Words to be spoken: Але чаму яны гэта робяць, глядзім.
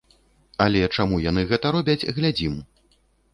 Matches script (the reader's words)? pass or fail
pass